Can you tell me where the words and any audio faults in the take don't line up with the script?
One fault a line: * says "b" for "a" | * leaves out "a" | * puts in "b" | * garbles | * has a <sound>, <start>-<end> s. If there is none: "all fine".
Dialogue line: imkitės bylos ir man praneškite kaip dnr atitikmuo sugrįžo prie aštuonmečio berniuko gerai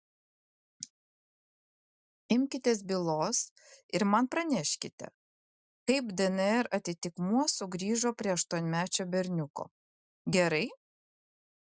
all fine